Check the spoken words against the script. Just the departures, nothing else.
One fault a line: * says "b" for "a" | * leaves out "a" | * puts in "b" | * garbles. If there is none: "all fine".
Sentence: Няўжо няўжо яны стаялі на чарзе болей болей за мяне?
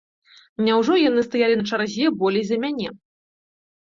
* leaves out "няўжо"
* leaves out "болей"